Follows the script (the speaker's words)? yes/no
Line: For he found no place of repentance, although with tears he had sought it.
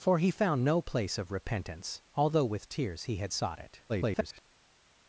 no